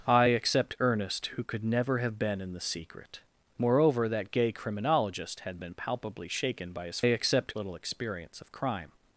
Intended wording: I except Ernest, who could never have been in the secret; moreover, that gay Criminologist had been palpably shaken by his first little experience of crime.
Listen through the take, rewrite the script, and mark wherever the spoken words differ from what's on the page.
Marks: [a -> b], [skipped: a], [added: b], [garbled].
I except Ernest, who could never have been in the secret; moreover, that gay Criminologist had been palpably shaken by his [first -> except] little experience of crime.